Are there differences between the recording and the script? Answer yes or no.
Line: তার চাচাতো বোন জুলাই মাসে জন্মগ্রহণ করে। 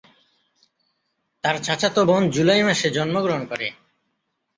no